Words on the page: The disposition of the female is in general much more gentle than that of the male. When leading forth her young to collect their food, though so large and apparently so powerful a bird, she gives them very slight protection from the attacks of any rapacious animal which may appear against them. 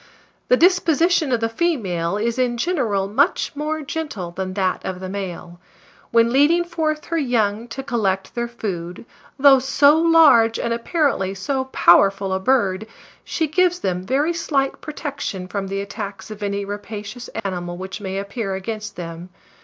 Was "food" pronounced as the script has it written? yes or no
yes